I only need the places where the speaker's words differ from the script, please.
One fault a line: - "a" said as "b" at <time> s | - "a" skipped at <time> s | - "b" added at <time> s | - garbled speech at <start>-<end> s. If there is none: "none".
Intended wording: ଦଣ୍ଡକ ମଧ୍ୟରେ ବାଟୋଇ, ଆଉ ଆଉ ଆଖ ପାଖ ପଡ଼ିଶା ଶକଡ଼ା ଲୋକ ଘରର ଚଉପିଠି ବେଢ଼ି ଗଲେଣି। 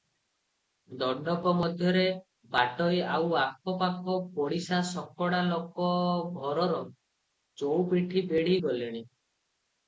- "ଆଉ" skipped at 3.4 s